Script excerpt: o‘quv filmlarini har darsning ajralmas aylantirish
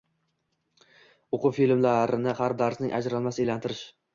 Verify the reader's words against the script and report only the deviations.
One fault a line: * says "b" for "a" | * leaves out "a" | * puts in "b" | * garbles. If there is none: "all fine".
all fine